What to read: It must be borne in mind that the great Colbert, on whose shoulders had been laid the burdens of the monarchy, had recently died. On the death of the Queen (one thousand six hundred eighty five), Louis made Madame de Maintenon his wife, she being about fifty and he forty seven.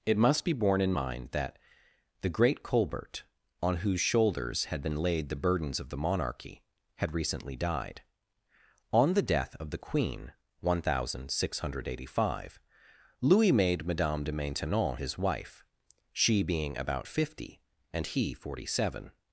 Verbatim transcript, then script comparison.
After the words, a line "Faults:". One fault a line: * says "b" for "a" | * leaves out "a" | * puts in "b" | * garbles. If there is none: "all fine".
It must be borne in mind that the great Colbert, on whose shoulders had been laid the burdens of the monarchy, had recently died. On the death of the Queen (one thousand six hundred eighty five), Louis made Madame de Maintenon his wife, she being about fifty and he forty seven.
Faults:
all fine